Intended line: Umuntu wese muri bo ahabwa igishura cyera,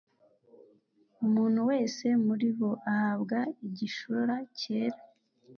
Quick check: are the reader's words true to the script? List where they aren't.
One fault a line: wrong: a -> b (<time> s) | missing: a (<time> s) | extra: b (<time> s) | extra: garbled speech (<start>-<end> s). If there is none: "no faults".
no faults